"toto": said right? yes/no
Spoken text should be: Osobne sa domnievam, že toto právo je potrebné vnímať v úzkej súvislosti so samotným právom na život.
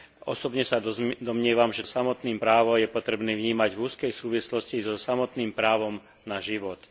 no